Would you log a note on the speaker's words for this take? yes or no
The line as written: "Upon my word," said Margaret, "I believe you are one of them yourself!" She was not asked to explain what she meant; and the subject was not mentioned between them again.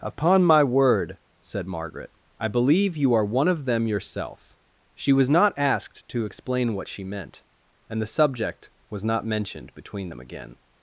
no